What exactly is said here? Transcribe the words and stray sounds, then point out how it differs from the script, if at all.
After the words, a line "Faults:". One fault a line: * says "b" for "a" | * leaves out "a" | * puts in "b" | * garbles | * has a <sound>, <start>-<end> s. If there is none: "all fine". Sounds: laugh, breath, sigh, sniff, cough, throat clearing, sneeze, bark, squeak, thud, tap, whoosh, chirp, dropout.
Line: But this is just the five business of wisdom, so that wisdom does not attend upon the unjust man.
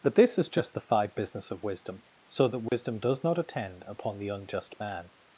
But this is just the five business of wisdom, so that wisdom does not attend upon the unjust man.
Faults:
* has a dropout, 2.7-2.7 s